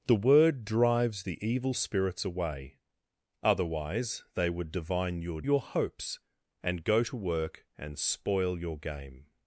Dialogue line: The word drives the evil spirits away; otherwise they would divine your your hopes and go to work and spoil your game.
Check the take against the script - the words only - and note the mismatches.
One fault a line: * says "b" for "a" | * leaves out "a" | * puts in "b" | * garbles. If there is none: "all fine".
all fine